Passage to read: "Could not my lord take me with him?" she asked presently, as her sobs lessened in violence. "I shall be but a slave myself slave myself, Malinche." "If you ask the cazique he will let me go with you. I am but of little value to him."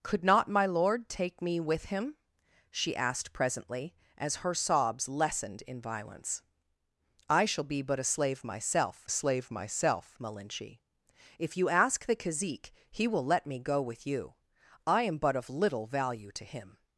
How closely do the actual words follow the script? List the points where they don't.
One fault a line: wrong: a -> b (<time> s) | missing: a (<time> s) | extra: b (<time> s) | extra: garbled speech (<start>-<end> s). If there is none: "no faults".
no faults